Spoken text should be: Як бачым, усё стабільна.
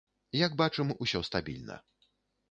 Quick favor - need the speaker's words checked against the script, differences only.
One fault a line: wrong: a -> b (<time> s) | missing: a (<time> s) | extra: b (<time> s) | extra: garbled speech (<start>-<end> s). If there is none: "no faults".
no faults